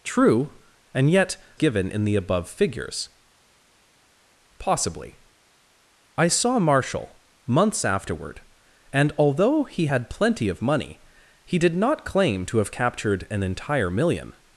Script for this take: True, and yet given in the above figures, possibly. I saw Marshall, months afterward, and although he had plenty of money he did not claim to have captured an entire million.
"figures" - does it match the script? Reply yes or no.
yes